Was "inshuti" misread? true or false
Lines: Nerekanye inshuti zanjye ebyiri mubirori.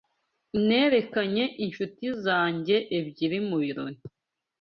false